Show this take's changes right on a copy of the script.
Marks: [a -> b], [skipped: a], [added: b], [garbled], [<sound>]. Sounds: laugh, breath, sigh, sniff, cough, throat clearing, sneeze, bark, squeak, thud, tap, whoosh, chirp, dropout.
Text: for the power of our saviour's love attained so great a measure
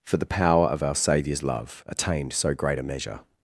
for the power of our saviour's love attained so great a measure